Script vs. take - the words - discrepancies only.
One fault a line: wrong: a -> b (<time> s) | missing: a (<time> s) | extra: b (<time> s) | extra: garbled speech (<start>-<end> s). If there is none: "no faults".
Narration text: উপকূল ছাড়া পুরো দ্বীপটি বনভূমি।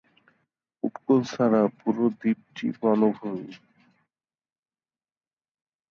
no faults